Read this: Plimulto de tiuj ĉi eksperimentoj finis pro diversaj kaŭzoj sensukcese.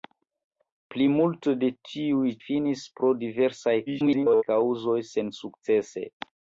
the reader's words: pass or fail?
fail